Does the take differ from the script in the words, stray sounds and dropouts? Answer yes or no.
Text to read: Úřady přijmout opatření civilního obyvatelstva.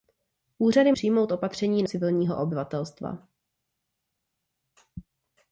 no